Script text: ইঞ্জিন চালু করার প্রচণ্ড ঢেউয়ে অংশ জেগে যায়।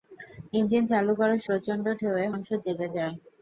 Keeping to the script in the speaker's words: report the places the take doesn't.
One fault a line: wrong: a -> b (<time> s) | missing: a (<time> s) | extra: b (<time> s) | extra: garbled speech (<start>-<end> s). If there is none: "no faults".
no faults